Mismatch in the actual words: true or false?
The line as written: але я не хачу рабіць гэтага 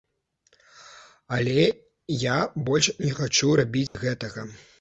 true